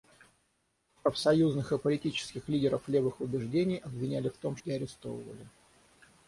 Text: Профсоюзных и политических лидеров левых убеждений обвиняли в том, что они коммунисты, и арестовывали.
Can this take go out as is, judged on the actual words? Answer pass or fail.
fail